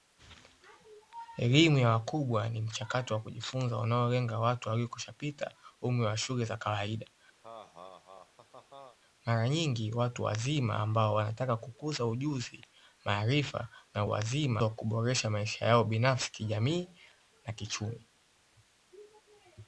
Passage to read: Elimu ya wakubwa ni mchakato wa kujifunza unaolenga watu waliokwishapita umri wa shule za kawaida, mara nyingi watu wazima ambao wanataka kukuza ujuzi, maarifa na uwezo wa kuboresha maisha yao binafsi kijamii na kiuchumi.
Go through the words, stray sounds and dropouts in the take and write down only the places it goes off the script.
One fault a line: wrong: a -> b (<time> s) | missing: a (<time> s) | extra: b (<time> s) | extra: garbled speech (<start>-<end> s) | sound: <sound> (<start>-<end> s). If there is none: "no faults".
sound: laugh (7.4-9.0 s)
wrong: uwezo -> wazima (14.1 s)